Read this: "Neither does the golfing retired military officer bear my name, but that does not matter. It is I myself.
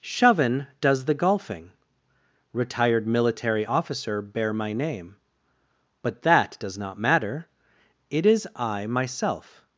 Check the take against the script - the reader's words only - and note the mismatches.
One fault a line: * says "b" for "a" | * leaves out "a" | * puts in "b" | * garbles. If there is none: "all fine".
* says "Shoven" for "Neither"